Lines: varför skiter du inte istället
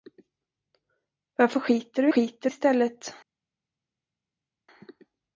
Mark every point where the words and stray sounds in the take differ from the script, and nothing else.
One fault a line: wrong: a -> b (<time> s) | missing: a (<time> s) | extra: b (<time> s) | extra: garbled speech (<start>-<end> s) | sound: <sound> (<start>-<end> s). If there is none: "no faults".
wrong: inte -> skiter (2.1 s)